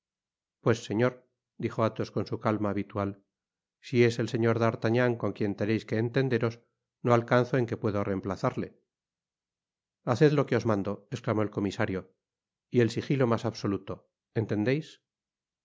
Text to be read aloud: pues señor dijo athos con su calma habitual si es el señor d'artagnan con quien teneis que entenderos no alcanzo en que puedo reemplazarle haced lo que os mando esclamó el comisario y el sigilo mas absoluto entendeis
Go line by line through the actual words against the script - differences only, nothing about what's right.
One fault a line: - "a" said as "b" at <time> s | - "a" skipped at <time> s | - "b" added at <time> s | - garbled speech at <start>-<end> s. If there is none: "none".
none